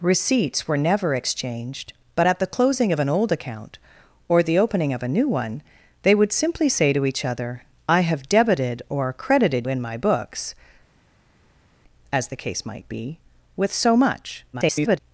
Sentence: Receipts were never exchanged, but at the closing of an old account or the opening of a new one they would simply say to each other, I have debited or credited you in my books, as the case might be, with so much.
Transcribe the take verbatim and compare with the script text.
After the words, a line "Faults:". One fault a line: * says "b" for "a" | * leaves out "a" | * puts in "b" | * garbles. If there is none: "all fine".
Receipts were never exchanged, but at the closing of an old account or the opening of a new one they would simply say to each other, I have debited or credited in my books, as the case might be, with so much. [garbled]
Faults:
* leaves out "you"
* garbles